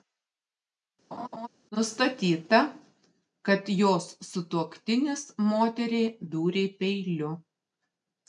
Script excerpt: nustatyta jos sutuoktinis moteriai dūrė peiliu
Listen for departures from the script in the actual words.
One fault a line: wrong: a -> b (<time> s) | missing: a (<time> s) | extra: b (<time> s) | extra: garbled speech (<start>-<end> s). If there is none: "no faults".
extra: kad (3.5 s)